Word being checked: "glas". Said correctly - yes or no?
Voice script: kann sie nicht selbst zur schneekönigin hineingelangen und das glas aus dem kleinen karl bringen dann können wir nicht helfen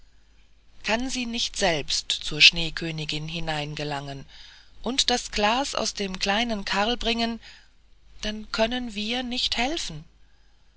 yes